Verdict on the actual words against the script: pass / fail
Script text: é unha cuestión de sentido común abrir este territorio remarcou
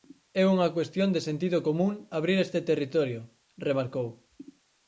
pass